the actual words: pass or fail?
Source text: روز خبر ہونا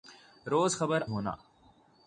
pass